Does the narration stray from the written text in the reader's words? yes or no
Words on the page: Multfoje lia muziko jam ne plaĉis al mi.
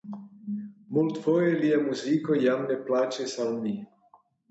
no